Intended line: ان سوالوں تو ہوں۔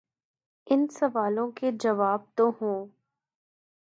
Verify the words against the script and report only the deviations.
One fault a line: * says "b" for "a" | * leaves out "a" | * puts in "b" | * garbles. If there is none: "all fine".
* puts in "کے جواب"